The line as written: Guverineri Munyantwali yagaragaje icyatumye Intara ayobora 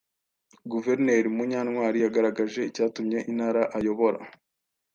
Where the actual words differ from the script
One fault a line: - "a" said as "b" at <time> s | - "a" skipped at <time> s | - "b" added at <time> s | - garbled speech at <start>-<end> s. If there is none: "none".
none